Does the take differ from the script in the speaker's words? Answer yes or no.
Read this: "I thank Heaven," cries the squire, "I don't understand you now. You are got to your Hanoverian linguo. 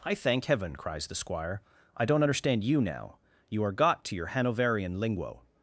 no